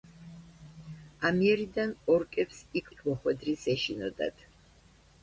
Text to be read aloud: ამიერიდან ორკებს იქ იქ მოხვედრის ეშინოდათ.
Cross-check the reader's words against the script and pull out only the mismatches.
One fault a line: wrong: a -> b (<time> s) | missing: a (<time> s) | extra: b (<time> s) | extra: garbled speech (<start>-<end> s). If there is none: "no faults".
no faults